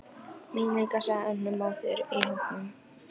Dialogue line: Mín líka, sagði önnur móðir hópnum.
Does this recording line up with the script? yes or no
no